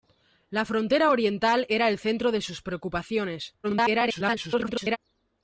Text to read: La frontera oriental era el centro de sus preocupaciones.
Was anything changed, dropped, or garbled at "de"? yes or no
no